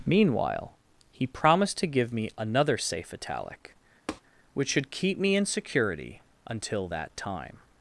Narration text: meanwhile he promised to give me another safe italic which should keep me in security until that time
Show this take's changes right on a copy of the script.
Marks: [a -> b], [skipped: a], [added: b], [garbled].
meanwhile he promised to give me another safe italic which should keep me in security until that time